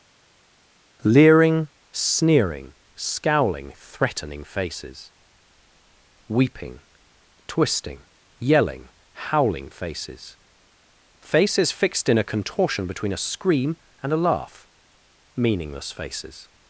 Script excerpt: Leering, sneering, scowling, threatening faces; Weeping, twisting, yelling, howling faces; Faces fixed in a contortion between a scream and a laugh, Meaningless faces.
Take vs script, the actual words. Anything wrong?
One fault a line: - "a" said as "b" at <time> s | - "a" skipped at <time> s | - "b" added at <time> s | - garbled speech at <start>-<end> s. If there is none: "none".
none